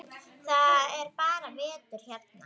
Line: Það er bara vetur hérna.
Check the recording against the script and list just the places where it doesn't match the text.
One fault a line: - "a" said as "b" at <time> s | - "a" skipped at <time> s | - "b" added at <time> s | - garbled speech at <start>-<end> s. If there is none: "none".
none